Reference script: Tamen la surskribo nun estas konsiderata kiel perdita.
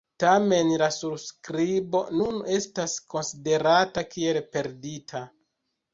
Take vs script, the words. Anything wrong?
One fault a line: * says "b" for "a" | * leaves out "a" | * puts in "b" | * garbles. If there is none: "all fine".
all fine